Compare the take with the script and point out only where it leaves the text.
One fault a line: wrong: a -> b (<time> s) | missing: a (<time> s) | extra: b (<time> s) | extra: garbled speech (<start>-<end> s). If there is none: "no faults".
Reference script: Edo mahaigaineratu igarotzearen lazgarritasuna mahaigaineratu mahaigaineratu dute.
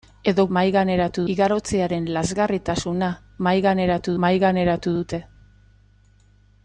no faults